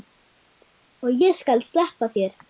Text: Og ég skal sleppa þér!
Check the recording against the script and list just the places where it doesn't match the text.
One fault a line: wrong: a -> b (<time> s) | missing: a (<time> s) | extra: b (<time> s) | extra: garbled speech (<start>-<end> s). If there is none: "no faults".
no faults